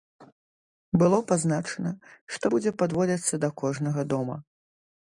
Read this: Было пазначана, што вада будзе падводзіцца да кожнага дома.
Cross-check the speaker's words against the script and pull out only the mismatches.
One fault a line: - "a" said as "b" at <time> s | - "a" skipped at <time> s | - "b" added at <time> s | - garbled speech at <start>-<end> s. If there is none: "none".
- "вада" skipped at 2.5 s